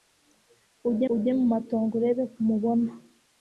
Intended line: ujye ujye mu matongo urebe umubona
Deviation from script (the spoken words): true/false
false